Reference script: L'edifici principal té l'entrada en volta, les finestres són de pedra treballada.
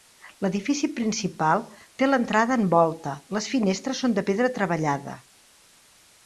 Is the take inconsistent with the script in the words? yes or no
no